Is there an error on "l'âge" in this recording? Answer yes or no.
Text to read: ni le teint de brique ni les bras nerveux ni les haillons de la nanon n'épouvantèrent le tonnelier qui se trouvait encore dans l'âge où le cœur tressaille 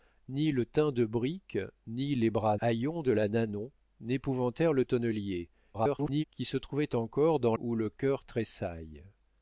yes